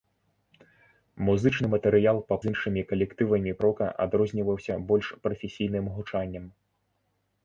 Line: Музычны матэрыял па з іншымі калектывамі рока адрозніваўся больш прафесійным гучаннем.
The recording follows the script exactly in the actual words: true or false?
true